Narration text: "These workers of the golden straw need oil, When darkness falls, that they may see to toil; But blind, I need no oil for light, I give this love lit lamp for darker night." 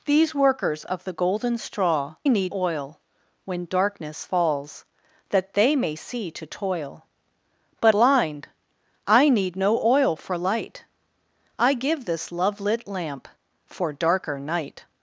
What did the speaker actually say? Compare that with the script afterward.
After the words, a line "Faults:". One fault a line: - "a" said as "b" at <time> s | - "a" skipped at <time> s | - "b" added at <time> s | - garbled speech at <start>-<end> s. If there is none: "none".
"These workers of the golden straw need oil, When darkness falls, that they may see to toil; But blind, I need no oil for light, I give this love lit lamp for darker night."
Faults:
none